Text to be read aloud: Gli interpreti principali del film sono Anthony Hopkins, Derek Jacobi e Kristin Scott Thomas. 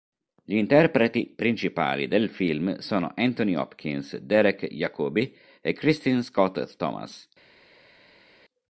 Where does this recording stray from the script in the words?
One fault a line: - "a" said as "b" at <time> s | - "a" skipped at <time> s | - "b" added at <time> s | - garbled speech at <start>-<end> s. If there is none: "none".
none